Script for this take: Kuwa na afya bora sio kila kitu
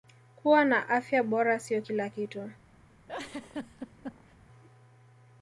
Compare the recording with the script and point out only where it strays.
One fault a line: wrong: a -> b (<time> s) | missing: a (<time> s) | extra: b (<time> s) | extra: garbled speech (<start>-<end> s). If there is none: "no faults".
no faults